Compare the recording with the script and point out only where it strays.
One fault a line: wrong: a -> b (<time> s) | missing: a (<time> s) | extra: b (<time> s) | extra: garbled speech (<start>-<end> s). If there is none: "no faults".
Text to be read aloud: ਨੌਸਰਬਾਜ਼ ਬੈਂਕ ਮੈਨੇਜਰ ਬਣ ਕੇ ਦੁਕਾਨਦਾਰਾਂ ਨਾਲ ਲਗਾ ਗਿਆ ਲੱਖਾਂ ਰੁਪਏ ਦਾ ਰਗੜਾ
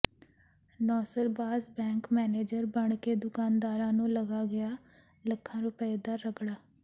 wrong: ਨਾਲ -> ਨੂੰ (3.9 s)